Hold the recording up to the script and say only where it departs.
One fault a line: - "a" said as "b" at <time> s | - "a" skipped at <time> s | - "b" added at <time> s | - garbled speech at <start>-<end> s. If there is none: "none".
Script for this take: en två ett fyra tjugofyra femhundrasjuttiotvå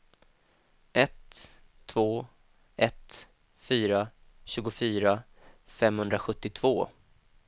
- "en" said as "ett" at 0.9 s